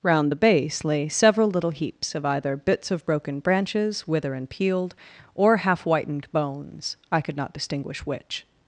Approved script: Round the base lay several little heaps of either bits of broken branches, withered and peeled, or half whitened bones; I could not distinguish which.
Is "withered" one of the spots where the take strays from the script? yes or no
yes